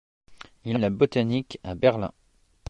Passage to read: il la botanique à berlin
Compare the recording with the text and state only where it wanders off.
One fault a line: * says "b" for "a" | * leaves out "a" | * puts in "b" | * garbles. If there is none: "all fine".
all fine